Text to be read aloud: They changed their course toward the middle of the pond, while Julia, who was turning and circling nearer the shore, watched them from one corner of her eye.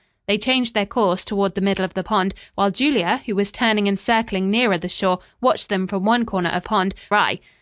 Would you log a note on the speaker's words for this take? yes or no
yes